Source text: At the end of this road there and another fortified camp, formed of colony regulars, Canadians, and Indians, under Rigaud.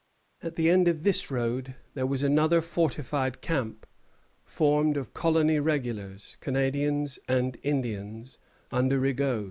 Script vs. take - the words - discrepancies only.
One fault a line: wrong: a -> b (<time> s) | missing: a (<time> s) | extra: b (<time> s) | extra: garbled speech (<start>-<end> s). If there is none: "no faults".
wrong: and -> was (2.1 s)